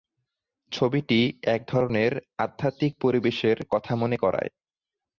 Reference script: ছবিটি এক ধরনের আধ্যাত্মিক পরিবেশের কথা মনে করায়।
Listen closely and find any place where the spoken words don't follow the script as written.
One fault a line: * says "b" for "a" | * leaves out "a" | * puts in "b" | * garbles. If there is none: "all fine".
all fine